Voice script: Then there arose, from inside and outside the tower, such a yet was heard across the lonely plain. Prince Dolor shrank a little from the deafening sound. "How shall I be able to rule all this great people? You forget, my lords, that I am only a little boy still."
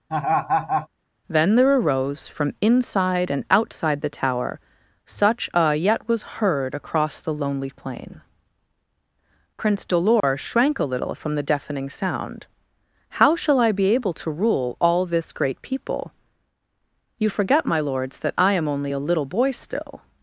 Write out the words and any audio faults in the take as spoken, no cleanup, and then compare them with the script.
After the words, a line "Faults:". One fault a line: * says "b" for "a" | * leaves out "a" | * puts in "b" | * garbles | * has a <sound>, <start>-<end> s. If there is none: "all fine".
Then there arose, from inside and outside the tower, such a yet was heard across the lonely plain. Prince Dolor shrank a little from the deafening sound. "How shall I be able to rule all this great people? You forget, my lords, that I am only a little boy still."
Faults:
* has a laugh, 0.1-0.9 s
* has a dropout, 10.2-10.2 s